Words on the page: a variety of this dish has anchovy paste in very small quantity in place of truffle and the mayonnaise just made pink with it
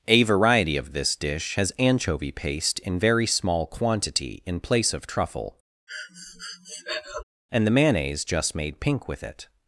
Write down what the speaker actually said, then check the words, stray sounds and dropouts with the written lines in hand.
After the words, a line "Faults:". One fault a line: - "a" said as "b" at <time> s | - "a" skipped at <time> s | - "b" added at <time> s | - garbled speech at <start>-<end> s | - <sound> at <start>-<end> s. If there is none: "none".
a variety of this dish has anchovy paste in very small quantity in place of truffle and the mayonnaise just made pink with it
Faults:
- breath at 5.9-7.2 s